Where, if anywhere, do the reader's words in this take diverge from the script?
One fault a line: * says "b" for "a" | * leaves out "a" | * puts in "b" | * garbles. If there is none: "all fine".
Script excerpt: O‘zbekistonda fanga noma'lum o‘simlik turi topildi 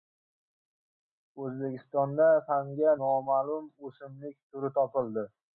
all fine